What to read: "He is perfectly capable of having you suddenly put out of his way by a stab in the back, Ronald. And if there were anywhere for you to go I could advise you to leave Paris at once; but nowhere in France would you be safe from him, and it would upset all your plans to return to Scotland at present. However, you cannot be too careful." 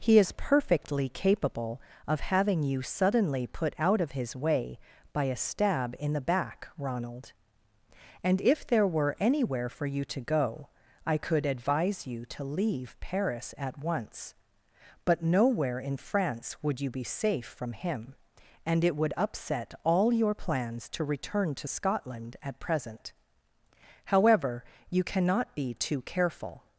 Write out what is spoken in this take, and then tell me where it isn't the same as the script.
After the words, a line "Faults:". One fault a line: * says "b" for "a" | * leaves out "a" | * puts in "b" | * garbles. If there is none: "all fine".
"He is perfectly capable of having you suddenly put out of his way by a stab in the back, Ronald. And if there were anywhere for you to go I could advise you to leave Paris at once; but nowhere in France would you be safe from him, and it would upset all your plans to return to Scotland at present. However, you cannot be too careful."
Faults:
all fine